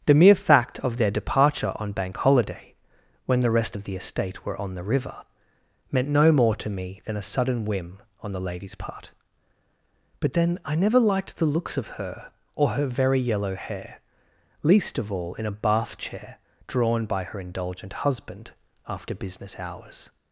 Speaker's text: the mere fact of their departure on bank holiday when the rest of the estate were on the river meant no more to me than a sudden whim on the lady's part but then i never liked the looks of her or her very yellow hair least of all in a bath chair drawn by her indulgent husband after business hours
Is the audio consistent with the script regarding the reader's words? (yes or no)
yes